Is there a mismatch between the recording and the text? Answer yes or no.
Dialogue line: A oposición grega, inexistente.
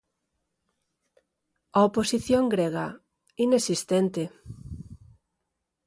no